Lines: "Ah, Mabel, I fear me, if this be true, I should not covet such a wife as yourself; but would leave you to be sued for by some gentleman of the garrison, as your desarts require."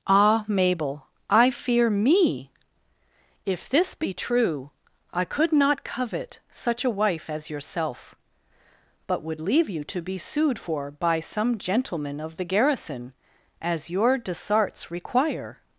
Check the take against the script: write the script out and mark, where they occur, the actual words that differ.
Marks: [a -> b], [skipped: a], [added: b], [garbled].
"Ah, Mabel, I fear me, if this be true, I [should -> could] not covet such a wife as yourself; but would leave you to be sued for by some gentleman of the garrison, as your desarts require."